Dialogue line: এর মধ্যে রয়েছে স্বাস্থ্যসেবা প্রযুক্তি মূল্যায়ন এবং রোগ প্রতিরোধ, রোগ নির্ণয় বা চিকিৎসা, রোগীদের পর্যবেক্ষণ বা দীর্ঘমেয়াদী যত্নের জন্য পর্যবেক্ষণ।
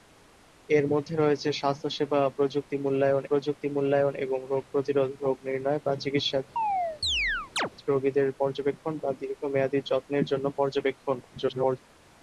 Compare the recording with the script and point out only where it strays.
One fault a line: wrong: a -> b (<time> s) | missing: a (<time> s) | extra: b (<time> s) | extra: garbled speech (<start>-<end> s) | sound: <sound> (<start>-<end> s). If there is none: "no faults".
extra: প্রযুক্তি মূল্যায়ন (3.3 s)
sound: chirp (6.6-7.7 s)
extra: garbled speech (11.2-11.8 s)